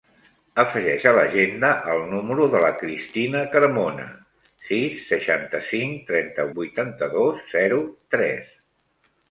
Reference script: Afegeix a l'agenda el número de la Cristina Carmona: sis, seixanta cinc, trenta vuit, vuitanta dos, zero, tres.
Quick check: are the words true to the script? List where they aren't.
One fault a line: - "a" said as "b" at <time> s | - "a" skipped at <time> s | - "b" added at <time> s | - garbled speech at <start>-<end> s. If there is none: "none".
- "vuit" skipped at 6.5 s